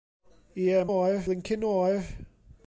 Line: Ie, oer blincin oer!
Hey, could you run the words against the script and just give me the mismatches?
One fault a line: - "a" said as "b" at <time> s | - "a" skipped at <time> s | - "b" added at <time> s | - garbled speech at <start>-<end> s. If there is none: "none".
none